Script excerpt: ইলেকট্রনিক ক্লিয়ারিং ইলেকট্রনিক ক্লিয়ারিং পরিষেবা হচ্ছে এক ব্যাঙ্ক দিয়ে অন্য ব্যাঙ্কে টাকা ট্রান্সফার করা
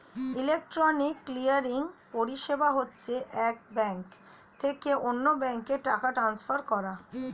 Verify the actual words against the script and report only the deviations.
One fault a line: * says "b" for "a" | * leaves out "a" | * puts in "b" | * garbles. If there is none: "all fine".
* leaves out "ইলেকট্রনিক ক্লিয়ারিং"
* says "থেকে" for "দিয়ে"